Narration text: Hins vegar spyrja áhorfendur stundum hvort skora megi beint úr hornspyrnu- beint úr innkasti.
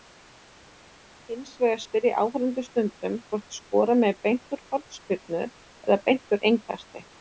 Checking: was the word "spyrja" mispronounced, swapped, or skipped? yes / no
no